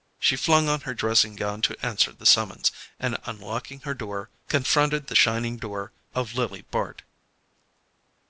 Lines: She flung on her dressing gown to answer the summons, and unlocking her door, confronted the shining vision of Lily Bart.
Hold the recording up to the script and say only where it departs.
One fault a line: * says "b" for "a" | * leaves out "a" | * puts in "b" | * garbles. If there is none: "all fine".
* says "door" for "vision"